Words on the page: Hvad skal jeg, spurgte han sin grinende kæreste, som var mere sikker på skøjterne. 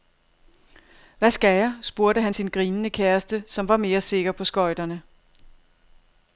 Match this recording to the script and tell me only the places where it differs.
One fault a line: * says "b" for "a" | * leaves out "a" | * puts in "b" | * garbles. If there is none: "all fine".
all fine